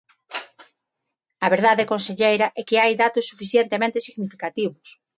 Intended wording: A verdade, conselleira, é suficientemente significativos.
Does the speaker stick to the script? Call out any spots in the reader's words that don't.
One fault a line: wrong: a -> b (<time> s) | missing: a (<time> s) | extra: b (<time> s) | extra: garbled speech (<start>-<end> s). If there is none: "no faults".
extra: que hai datos (2.7 s)